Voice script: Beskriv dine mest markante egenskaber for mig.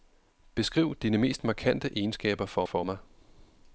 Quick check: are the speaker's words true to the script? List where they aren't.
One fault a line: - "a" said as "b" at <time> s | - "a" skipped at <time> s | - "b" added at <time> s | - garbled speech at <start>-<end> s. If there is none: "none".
- "for" added at 2.6 s